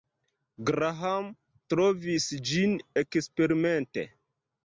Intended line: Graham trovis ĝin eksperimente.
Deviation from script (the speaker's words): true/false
false